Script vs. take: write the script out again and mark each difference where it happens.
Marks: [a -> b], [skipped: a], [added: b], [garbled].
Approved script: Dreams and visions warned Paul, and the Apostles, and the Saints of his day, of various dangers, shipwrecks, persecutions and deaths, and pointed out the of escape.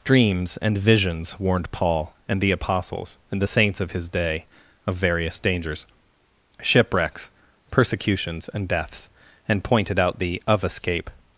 Dreams and visions warned Paul, and the Apostles, and the Saints of his day, of various dangers, shipwrecks, persecutions and deaths, and pointed out the of escape.